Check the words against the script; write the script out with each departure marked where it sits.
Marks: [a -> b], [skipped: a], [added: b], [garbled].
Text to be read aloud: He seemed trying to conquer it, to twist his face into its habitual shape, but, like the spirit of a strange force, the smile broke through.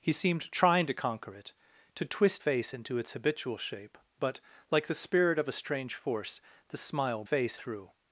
He seemed trying to conquer it, to twist [skipped: his] face into its habitual shape, but, like the spirit of a strange force, the smile [broke -> face] through.